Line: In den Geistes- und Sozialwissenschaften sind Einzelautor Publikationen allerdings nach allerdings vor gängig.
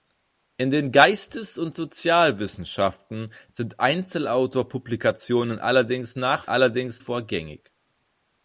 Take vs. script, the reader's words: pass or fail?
pass